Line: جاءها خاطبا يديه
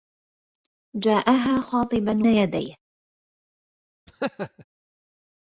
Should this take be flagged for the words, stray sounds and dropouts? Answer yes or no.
yes